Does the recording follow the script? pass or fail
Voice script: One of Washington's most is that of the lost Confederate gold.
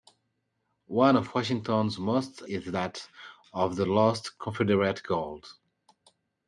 pass